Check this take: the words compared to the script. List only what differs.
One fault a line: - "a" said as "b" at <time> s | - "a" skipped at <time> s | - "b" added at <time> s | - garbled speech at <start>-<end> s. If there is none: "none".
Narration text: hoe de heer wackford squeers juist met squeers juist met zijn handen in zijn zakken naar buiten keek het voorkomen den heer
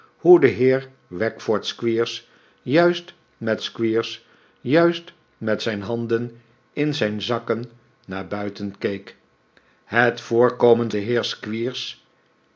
none